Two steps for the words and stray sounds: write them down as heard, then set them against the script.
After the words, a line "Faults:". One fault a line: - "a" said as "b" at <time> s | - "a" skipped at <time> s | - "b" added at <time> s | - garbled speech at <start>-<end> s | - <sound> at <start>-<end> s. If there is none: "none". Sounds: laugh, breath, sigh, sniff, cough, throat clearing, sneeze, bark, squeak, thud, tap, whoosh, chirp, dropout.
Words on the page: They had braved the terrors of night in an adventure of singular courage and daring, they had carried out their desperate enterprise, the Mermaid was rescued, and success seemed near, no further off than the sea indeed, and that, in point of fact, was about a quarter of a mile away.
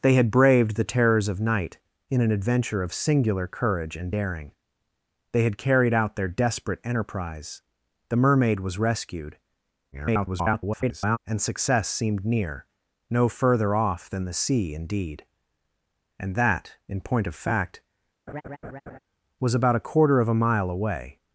They had braved the terrors of night in an adventure of singular courage and daring, they had carried out their desperate enterprise, the Mermaid was rescued, [garbled] and success seemed near, no further off than the sea indeed, and that, in point of fact, was about a quarter of a mile away.
Faults:
- garbled speech at 9.9-11.2 s
- laugh at 18.3-19.0 s